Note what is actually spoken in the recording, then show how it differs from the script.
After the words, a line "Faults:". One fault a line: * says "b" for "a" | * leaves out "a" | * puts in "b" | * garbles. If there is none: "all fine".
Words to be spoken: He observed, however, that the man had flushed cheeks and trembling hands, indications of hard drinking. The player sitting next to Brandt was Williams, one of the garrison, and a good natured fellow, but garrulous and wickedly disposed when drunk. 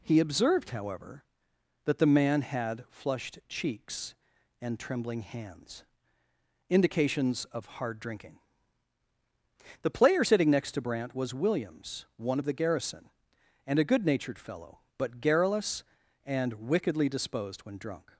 He observed, however, that the man had flushed cheeks and trembling hands, indications of hard drinking. The player sitting next to Brandt was Williams, one of the garrison, and a good natured fellow, but garrulous and wickedly disposed when drunk.
Faults:
all fine